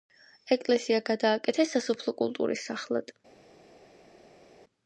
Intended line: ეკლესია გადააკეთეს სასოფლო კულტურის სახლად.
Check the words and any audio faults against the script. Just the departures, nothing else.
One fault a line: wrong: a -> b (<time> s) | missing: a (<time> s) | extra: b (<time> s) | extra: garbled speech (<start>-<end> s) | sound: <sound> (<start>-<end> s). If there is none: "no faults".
no faults